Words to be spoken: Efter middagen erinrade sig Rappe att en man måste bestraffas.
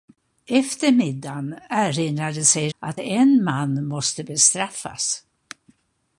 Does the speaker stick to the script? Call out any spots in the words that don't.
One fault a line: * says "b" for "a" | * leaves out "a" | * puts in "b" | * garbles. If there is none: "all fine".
* leaves out "Rappe"